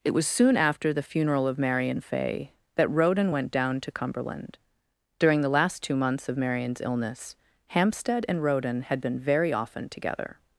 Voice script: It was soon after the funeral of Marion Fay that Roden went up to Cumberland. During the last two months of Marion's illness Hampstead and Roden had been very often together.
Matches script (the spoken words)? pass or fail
fail